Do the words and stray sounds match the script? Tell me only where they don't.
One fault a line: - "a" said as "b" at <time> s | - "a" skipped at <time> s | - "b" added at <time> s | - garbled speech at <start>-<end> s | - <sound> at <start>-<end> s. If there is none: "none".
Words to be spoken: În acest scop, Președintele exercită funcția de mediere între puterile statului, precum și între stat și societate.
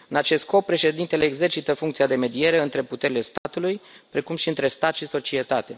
- dropout at 3.4-3.5 s